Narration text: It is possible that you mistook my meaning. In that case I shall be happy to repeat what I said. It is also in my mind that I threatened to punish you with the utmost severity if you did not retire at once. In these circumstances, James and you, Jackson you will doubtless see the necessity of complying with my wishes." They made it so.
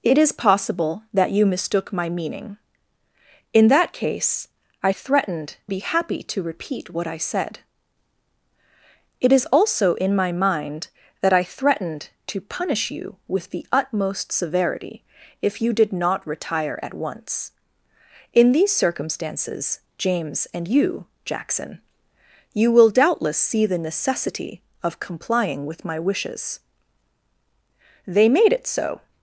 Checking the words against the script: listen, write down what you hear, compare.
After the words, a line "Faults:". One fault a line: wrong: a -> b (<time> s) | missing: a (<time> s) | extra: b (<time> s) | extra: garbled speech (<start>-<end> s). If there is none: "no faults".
It is possible that you mistook my meaning. In that case I threatened be happy to repeat what I said. It is also in my mind that I threatened to punish you with the utmost severity if you did not retire at once. In these circumstances, James and you, Jackson you will doubtless see the necessity of complying with my wishes." They made it so.
Faults:
wrong: shall -> threatened (4.9 s)